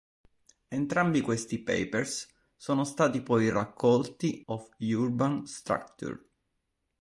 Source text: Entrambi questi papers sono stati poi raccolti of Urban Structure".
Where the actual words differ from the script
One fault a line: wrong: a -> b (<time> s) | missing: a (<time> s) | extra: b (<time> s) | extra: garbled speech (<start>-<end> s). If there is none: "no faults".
no faults